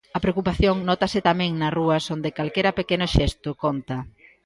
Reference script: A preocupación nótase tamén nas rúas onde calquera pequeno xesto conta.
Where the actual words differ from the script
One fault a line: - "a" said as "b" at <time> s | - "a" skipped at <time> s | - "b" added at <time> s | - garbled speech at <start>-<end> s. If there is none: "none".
none